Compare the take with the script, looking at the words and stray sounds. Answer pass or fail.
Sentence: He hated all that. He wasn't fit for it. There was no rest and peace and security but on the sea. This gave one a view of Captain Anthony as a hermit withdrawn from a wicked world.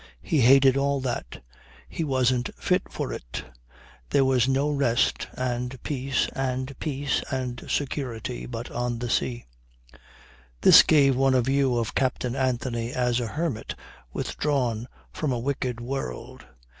fail